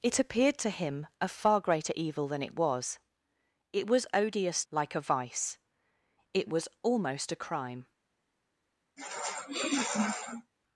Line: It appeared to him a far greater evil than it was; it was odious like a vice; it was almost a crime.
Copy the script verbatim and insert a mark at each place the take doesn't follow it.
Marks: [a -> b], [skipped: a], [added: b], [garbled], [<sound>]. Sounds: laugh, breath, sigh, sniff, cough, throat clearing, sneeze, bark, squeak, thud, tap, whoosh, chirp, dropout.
It appeared to him a far greater evil than it was; it was odious like a vice; it was almost a crime. [sniff]